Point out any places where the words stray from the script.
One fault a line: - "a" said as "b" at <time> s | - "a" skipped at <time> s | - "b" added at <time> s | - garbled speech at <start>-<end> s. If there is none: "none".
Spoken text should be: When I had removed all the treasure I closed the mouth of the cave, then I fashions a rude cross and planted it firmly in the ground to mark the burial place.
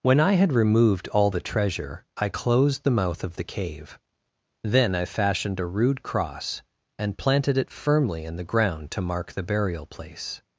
- "fashions" said as "fashioned" at 5.0 s